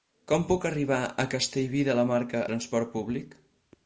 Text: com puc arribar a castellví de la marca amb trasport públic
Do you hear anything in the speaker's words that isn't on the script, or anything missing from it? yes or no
yes